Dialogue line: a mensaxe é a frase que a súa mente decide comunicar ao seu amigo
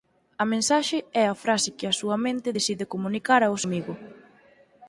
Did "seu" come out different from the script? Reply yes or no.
yes